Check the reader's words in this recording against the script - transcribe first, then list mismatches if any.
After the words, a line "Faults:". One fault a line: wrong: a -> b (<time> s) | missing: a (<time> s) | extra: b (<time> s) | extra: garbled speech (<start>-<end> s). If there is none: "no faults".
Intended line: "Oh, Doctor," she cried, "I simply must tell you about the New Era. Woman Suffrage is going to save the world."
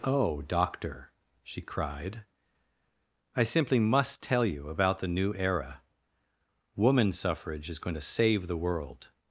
"Oh, Doctor," she cried, "I simply must tell you about the New Era. Woman Suffrage is going to save the world."
Faults:
no faults